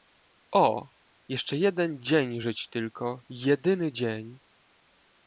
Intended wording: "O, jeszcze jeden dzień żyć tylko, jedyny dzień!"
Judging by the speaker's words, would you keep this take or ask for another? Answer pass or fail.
pass